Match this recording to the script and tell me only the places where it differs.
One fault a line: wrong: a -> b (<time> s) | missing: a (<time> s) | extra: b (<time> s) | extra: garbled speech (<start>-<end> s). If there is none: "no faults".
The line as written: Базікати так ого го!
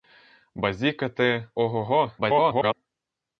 missing: так (1.5 s)
extra: garbled speech (2.2-2.7 s)